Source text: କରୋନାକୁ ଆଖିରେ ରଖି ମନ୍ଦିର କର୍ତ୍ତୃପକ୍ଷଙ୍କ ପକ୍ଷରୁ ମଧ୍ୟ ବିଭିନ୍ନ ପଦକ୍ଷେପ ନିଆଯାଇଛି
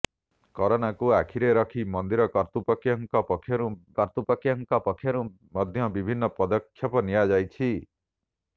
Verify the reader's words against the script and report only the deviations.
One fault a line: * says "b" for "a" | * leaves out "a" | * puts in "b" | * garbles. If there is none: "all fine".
* puts in "କର୍ତ୍ତୃପକ୍ଷଙ୍କ ପକ୍ଷରୁ"